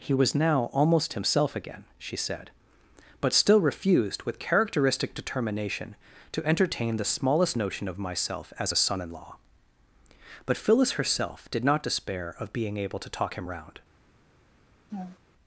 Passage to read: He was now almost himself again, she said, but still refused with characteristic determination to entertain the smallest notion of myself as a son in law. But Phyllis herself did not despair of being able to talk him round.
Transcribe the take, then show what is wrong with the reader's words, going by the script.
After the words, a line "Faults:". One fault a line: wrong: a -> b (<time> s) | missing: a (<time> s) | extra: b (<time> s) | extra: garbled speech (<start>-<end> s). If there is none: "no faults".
He was now almost himself again, she said, but still refused with characteristic determination to entertain the smallest notion of myself as a son in law. But Phyllis herself did not despair of being able to talk him round.
Faults:
no faults